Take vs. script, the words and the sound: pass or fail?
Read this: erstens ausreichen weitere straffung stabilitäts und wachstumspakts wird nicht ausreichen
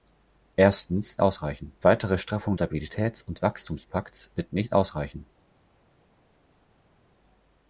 pass